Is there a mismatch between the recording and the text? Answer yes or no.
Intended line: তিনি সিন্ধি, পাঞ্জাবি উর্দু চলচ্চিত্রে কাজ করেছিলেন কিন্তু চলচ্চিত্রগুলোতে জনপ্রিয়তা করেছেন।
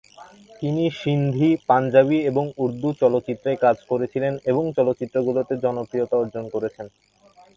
yes